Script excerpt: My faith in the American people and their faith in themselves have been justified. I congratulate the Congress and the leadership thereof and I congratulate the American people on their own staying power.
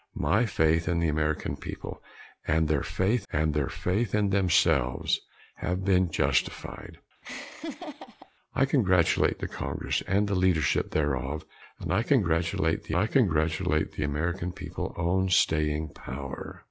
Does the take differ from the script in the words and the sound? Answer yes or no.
yes